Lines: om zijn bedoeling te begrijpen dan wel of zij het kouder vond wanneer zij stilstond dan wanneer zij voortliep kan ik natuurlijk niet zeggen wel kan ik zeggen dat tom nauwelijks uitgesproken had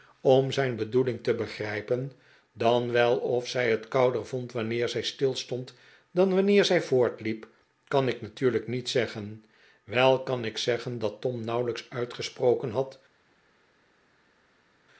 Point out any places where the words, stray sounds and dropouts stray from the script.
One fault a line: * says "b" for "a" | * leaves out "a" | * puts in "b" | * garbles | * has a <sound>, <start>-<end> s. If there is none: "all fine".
all fine